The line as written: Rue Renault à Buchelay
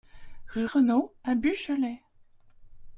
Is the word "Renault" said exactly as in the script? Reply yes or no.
yes